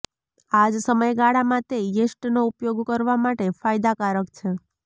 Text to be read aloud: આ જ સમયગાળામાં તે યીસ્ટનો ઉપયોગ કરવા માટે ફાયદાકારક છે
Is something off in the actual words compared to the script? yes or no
no